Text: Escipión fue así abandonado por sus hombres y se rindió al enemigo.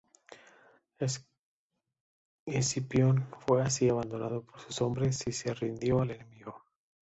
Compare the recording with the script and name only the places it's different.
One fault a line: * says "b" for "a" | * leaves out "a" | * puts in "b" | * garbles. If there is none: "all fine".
all fine